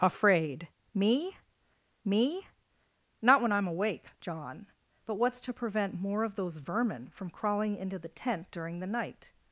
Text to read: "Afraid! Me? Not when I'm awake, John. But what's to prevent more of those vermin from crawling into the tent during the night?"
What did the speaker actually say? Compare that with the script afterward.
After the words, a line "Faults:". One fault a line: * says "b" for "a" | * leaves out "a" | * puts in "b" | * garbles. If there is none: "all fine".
"Afraid! Me me? Not when I'm awake, John. But what's to prevent more of those vermin from crawling into the tent during the night?"
Faults:
* puts in "me"